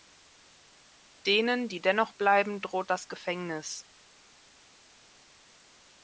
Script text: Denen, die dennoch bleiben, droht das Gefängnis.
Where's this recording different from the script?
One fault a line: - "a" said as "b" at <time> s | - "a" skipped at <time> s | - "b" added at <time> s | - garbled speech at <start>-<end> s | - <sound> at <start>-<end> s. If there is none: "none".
none